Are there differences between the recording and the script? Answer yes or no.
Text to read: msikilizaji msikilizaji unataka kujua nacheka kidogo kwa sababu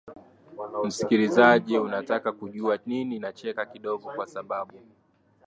yes